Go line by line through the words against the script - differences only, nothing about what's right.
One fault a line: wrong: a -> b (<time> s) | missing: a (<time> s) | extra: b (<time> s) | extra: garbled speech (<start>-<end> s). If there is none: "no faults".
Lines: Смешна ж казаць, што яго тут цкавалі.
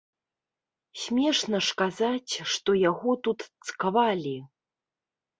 no faults